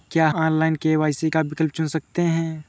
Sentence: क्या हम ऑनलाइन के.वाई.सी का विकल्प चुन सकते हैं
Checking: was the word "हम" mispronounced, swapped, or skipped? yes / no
yes